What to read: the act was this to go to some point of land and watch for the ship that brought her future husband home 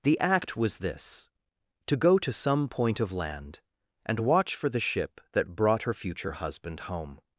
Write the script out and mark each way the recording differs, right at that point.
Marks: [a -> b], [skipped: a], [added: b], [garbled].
the act was this to go to some point of land and watch for the ship that brought her future husband home